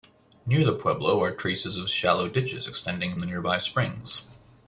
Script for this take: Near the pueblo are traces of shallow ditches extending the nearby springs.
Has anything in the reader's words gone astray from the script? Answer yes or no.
no